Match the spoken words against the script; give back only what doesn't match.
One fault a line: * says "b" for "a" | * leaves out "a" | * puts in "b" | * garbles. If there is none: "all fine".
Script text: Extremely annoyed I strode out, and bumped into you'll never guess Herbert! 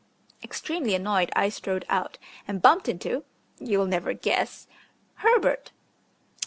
all fine